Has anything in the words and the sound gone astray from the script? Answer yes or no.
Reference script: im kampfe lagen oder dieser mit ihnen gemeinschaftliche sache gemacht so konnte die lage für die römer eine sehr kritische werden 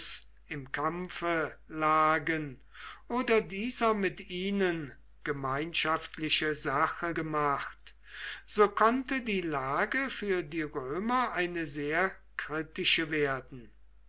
no